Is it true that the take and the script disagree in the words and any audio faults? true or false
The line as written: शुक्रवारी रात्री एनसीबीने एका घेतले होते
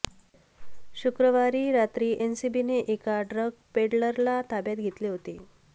true